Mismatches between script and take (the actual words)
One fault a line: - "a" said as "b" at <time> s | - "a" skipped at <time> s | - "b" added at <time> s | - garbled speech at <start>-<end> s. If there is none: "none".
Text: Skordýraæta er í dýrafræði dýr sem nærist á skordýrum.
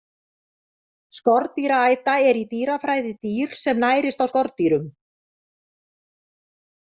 none